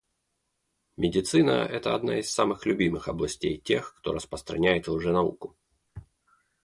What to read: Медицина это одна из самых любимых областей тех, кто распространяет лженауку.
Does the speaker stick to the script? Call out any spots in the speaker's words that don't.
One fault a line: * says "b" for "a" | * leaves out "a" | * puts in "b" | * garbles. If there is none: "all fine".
all fine